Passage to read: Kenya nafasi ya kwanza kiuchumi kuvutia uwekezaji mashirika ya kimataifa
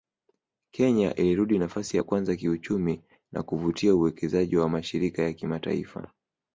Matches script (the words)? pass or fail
fail